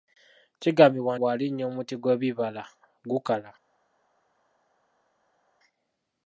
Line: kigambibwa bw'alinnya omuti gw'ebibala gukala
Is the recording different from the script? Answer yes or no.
no